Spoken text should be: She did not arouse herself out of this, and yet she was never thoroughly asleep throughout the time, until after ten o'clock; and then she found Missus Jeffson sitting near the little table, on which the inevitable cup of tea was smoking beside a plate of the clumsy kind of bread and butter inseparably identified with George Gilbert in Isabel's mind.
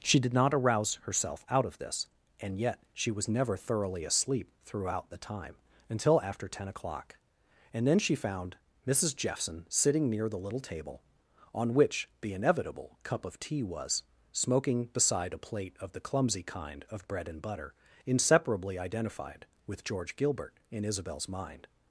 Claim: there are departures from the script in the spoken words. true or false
false